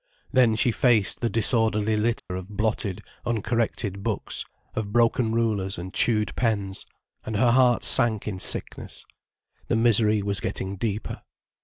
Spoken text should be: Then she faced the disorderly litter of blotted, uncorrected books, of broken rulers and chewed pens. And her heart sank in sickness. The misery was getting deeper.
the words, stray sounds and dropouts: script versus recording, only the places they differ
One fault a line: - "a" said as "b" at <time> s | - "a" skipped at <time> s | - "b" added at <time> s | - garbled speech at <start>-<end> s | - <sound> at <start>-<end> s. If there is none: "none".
- dropout at 2.2-2.3 s